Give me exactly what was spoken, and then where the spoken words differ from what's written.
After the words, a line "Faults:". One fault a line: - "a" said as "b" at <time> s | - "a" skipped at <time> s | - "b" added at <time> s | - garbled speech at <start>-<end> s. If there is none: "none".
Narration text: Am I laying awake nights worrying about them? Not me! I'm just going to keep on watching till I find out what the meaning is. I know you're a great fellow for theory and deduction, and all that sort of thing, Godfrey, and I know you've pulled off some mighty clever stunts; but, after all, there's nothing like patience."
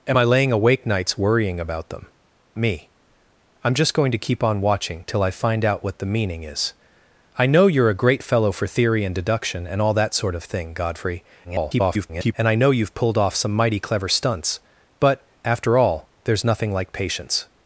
Am I laying awake nights worrying about them? Me! I'm just going to keep on watching till I find out what the meaning is. I know you're a great fellow for theory and deduction, and all that sort of thing, Godfrey, [garbled] and I know you've pulled off some mighty clever stunts; but, after all, there's nothing like patience."
Faults:
- "Not" skipped at 2.1 s
- garbled speech at 11.4-12.3 s